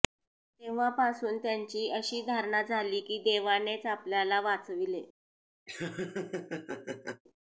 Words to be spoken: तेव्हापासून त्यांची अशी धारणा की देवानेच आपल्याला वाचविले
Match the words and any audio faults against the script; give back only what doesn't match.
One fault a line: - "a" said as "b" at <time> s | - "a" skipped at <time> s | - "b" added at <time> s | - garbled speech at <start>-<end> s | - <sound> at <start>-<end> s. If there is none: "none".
- "झाली" added at 2.6 s
- laugh at 5.7-7.2 s